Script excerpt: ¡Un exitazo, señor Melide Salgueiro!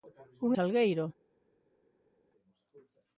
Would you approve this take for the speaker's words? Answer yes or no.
no